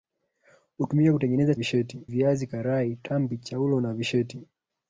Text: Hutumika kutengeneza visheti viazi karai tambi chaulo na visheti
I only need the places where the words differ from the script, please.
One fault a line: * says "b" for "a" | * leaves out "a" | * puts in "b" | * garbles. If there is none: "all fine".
all fine